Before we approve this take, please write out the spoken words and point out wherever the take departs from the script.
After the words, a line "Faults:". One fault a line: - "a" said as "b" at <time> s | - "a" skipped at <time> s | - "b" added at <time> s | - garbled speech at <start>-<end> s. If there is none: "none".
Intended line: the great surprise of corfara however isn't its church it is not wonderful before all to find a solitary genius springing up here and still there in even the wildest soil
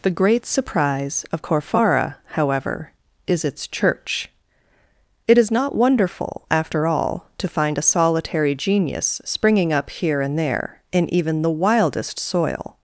the great surprise of corfara however is its church it is not wonderful after all to find a solitary genius springing up here and there in even the wildest soil
Faults:
- "isn't" said as "is" at 3.3 s
- "before" said as "after" at 6.5 s
- "still" skipped at 10.4 s